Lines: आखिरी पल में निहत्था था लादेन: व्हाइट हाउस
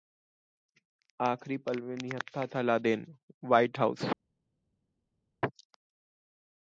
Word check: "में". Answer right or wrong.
right